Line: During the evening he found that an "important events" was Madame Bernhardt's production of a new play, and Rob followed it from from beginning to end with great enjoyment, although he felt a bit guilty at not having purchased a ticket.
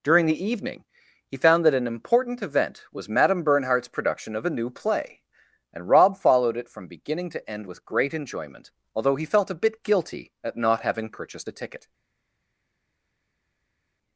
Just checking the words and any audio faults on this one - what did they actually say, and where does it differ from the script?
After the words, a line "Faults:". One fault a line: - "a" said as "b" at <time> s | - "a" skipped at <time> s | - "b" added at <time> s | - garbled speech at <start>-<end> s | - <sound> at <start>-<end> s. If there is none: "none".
During the evening he found that an "important event" was Madame Bernhardt's production of a new play, and Rob followed it from beginning to end with great enjoyment, although he felt a bit guilty at not having purchased a ticket.
Faults:
- "events" said as "event" at 2.4 s
- "from" skipped at 6.9 s